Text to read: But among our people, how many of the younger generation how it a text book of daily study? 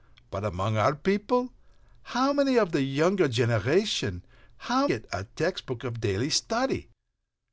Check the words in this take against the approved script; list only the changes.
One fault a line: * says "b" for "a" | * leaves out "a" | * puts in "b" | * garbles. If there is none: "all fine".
all fine